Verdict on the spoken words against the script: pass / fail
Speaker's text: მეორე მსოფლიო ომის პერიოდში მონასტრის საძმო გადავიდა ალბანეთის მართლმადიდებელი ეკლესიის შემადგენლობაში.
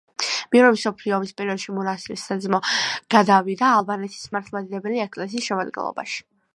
pass